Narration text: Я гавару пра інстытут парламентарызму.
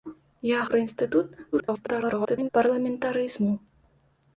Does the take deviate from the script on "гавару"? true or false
true